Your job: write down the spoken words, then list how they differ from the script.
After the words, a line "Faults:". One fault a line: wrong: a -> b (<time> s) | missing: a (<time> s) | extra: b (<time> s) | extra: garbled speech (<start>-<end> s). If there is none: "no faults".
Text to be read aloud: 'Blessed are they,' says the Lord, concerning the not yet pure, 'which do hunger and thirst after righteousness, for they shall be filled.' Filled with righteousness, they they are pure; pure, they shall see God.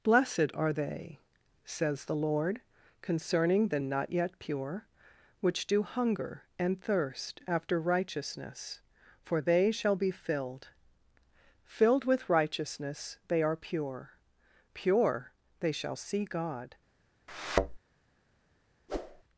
'Blessed are they,' says the Lord, concerning the not yet pure, 'which do hunger and thirst after righteousness, for they shall be filled.' Filled with righteousness, they are pure; pure, they shall see God.
Faults:
missing: they (13.4 s)